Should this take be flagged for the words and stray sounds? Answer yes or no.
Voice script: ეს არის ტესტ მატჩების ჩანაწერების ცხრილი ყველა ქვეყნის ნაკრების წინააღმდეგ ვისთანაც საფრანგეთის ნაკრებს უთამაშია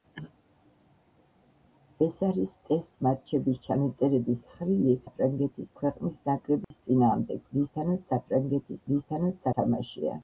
yes